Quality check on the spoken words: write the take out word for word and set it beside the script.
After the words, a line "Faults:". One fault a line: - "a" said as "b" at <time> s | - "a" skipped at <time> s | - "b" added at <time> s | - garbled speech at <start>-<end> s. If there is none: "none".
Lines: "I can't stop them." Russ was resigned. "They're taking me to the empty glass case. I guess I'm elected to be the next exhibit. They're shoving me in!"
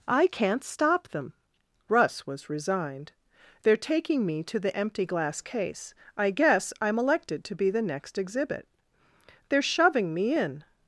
"I can't stop them." Russ was resigned. "They're taking me to the empty glass case. I guess I'm elected to be the next exhibit. They're shoving me in!"
Faults:
none